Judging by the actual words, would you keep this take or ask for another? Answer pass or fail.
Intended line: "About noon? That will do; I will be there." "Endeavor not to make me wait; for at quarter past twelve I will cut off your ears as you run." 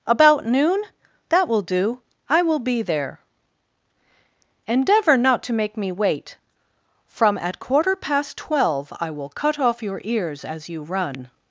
fail